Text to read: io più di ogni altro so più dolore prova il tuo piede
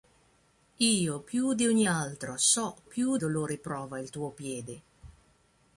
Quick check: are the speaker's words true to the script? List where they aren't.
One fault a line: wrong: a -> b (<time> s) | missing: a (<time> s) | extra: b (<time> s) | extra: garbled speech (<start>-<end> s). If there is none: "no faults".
no faults